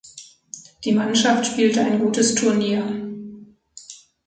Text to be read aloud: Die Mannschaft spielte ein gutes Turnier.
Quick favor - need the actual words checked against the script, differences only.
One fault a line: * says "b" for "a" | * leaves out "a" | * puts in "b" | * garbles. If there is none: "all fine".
all fine